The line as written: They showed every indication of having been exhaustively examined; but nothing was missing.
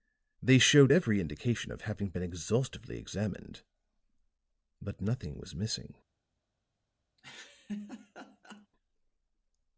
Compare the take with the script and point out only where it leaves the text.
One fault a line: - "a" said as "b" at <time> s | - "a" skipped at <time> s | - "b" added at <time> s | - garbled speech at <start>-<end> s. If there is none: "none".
none